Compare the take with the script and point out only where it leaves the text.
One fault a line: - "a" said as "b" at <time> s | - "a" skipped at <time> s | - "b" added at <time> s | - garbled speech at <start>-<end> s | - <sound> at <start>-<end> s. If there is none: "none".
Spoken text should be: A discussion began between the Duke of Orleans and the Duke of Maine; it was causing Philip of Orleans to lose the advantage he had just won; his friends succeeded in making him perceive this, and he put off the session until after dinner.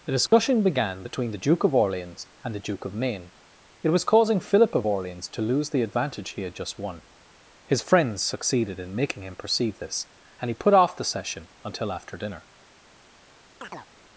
- dropout at 0.3-0.3 s
- chirp at 13.6-13.9 s